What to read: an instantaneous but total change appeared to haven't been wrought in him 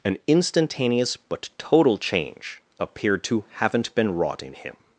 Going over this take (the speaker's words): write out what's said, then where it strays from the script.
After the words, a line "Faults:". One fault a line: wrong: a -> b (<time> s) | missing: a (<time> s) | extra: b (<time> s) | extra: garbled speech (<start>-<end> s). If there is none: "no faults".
an instantaneous but total change appeared to haven't been wrought in him
Faults:
no faults